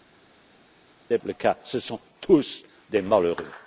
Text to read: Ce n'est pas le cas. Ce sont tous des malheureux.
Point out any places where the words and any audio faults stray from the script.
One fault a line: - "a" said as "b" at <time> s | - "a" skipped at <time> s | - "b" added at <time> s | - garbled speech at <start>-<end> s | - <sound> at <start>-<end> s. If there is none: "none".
- "pas" skipped at 1.2 s